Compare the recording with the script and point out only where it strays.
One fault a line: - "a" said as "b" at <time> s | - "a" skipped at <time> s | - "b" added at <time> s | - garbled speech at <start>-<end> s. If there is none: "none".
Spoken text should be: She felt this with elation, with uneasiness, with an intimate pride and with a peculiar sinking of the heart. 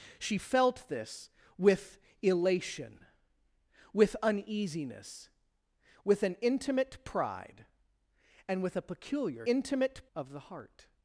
- "sinking" said as "intimate" at 9.4 s